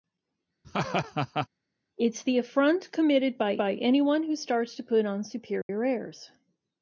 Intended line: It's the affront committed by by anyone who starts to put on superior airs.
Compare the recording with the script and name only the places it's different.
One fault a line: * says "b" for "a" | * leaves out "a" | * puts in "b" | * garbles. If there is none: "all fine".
all fine